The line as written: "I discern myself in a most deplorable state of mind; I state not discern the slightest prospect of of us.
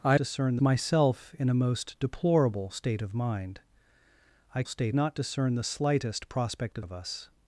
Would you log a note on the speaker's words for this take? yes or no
no